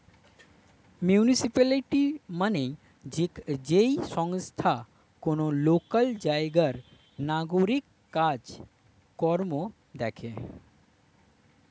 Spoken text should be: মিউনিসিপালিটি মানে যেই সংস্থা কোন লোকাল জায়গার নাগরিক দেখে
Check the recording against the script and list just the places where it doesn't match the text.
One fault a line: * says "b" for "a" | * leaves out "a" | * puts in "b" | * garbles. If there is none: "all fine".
* puts in "কাজ কর্ম"